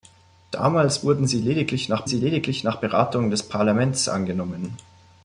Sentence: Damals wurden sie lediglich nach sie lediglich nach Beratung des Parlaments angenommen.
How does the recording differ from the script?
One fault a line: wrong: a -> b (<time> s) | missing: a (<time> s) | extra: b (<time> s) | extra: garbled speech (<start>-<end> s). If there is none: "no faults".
no faults